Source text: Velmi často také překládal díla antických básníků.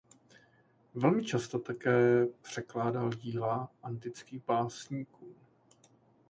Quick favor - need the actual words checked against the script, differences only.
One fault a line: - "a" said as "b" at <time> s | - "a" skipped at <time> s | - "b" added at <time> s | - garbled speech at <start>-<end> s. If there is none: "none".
none